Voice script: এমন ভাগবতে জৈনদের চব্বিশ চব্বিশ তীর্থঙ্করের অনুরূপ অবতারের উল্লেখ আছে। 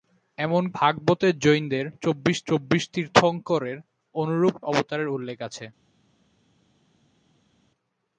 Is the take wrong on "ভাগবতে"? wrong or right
right